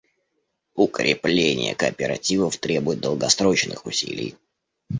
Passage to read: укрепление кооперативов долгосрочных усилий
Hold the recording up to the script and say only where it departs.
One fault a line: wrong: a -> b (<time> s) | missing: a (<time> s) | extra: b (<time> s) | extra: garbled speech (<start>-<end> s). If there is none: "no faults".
extra: требует (2.6 s)